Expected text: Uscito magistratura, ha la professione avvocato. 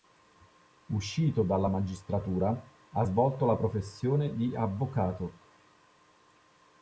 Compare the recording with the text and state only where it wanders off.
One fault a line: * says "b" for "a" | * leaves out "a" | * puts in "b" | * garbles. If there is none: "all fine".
* puts in "dalla"
* puts in "svolto"
* puts in "di"